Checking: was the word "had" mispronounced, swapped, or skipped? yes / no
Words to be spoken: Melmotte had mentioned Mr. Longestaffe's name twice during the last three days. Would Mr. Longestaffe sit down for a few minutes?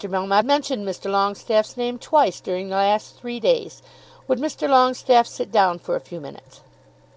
yes